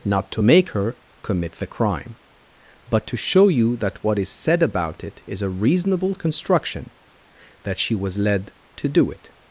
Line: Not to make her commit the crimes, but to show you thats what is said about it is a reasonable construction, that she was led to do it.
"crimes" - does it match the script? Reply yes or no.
no